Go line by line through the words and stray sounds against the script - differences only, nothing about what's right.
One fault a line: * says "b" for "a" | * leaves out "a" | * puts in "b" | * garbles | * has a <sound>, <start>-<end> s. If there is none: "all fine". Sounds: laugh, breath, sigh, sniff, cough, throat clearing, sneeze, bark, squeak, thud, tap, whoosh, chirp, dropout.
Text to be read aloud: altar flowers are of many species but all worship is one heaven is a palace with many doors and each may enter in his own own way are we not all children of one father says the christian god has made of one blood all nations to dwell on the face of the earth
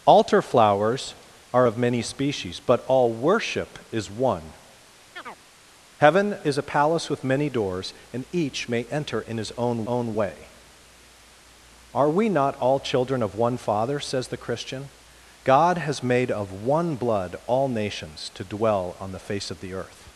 * has a chirp, 5.1-5.4 s